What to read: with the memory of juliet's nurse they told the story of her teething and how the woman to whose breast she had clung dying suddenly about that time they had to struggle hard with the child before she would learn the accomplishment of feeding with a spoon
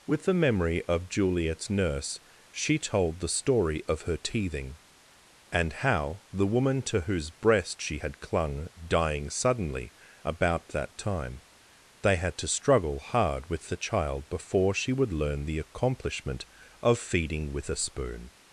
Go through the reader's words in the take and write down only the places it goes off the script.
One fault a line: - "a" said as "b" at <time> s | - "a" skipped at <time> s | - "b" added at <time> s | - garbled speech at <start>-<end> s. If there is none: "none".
- "they" said as "she" at 2.5 s